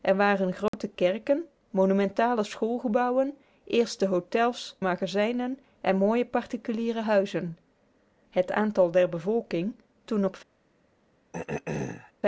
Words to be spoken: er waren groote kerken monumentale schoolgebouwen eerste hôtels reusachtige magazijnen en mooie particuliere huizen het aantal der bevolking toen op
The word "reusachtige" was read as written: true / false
false